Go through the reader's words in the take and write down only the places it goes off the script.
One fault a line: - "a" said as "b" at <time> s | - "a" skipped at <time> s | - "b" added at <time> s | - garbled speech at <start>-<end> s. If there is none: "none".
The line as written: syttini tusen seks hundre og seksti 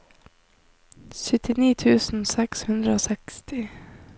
none